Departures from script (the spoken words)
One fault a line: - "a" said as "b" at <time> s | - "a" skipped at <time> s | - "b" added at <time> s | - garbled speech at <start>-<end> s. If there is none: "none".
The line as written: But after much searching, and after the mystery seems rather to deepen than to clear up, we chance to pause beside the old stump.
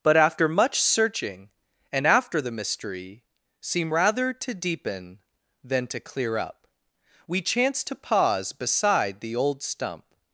- "seems" said as "seem" at 3.6 s